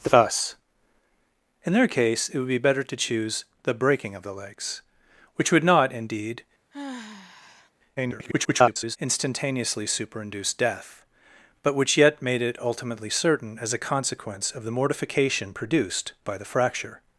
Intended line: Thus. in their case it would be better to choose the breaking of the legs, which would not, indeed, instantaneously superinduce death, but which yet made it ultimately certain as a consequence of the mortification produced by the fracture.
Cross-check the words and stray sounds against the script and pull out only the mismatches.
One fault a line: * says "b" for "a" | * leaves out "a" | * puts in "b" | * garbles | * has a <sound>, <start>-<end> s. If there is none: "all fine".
* has a sigh, 6.7-7.7 s
* garbles